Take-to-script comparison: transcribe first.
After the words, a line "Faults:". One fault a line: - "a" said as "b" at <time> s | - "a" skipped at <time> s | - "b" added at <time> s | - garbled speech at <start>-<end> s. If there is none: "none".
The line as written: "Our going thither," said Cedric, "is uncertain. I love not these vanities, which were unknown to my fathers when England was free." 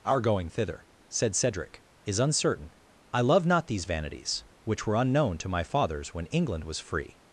"Our going thither," said Cedric, "is uncertain. I love not these vanities, which were unknown to my fathers when England was free."
Faults:
none